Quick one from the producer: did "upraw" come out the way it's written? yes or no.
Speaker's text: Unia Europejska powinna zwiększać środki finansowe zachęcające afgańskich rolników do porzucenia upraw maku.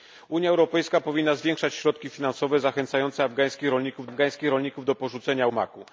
no